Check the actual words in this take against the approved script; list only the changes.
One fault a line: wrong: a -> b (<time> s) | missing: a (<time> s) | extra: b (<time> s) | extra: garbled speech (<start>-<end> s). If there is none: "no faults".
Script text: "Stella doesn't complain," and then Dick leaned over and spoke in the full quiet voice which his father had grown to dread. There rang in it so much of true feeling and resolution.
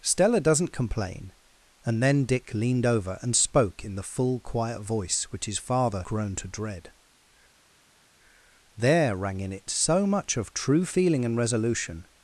missing: had (6.0 s)